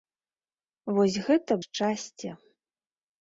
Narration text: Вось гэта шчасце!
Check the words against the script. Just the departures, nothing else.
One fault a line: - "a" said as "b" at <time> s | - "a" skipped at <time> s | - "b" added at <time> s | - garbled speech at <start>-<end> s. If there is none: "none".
none